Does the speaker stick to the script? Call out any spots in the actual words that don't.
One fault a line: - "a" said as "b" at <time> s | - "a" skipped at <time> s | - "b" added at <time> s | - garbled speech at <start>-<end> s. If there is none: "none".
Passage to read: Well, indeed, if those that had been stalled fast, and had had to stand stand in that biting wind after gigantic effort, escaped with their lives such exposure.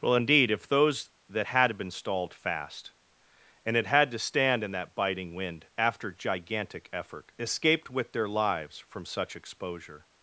- "stand" skipped at 4.6 s
- "from" added at 8.8 s